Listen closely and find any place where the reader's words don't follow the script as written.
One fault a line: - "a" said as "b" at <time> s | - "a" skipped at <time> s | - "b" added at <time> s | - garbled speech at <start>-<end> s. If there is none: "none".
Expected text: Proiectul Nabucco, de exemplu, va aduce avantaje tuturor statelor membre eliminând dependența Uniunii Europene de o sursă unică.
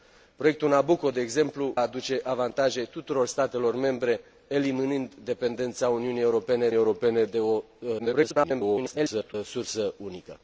- "va" skipped at 1.8 s
- "Europene" added at 6.7 s
- garbled speech at 8.0-9.3 s